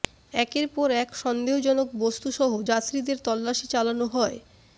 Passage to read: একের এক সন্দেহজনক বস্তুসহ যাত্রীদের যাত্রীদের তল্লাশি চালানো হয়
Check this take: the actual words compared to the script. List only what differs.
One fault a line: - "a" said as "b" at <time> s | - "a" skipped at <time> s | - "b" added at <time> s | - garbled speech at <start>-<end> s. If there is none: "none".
- "পর" added at 0.7 s
- "যাত্রীদের" skipped at 3.2 s